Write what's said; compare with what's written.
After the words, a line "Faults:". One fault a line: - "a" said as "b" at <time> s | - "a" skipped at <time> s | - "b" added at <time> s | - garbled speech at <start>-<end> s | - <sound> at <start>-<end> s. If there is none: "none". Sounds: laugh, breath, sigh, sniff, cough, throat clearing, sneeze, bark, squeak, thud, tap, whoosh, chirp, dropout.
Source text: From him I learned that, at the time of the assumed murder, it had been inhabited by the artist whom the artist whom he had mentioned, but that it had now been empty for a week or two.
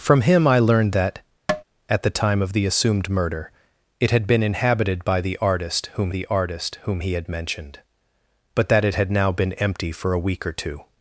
From him I learned that, at the time of the assumed murder, it had been inhabited by the artist whom the artist whom he had mentioned, but that it had now been empty for a week or two.
Faults:
- tap at 1.5-1.6 s